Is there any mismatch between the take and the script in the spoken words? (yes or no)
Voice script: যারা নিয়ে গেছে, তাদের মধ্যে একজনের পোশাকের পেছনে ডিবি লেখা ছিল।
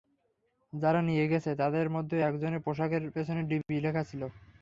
no